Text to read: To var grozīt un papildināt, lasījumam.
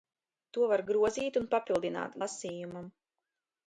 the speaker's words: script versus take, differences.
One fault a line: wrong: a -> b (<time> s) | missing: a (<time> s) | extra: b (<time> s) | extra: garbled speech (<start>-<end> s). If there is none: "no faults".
no faults